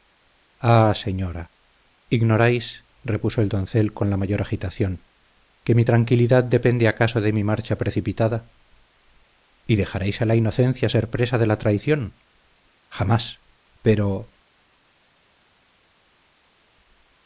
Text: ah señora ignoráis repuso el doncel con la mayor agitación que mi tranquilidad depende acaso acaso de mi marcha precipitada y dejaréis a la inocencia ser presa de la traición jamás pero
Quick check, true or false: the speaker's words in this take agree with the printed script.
false